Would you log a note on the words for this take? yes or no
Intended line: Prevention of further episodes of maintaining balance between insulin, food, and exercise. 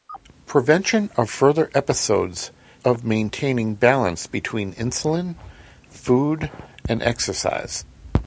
no